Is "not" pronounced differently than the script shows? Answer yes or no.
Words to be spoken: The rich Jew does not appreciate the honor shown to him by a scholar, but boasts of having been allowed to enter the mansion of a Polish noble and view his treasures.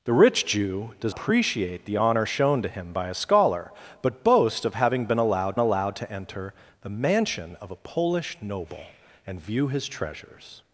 yes